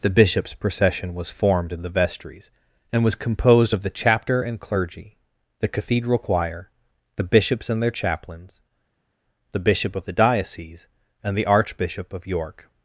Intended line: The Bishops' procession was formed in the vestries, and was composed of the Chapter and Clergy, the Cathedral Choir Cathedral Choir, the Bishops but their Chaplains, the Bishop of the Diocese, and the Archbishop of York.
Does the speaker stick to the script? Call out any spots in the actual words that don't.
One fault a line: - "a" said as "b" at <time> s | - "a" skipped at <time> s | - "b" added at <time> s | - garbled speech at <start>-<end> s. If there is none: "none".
- "Cathedral Choir" skipped at 6.7 s
- "but" said as "and" at 7.7 s